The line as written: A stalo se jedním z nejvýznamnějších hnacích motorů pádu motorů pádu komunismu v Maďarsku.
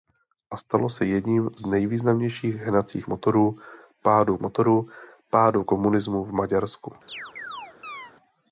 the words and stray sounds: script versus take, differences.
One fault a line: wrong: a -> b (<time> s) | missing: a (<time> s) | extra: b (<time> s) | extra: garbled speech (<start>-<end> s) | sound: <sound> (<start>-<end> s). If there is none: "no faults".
sound: chirp (7.1-8.1 s)